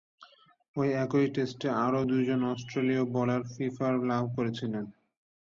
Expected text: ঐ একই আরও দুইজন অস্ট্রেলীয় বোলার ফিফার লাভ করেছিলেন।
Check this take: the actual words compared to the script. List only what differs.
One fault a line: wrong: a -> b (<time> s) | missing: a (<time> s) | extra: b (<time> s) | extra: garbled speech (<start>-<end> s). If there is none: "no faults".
extra: টেস্টে (1.4 s)